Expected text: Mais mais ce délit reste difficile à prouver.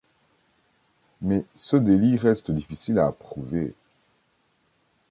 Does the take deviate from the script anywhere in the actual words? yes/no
yes